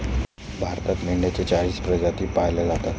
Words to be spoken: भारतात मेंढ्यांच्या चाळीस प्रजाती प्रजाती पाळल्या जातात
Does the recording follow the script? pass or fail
fail